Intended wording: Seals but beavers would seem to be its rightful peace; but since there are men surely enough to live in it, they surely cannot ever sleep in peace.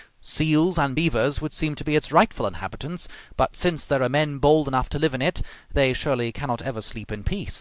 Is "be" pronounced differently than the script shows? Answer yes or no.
no